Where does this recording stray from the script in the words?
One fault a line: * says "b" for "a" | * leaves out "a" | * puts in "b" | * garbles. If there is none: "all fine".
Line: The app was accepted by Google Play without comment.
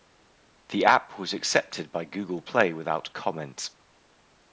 all fine